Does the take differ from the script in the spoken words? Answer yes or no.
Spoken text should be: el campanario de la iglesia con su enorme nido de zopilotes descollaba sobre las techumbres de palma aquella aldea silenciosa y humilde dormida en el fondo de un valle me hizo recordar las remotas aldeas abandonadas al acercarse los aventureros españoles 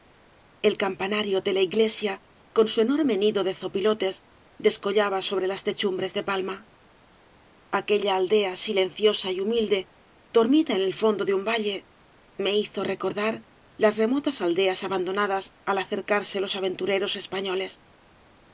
no